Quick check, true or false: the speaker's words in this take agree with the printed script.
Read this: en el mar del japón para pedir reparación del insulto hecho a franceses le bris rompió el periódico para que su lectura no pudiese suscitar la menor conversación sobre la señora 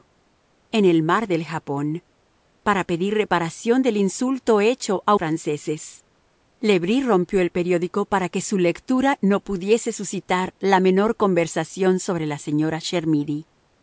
true